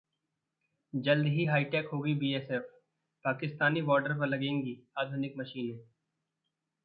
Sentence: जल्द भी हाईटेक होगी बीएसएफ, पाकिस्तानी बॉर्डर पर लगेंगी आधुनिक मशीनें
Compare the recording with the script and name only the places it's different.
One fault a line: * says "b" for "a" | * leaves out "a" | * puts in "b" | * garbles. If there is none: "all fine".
* says "ही" for "भी"